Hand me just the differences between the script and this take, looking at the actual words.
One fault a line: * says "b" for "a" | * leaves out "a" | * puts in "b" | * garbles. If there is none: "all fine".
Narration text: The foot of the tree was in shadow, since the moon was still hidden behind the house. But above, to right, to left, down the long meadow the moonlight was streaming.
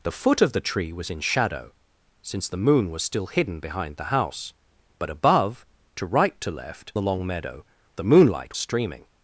* leaves out "down"
* leaves out "was"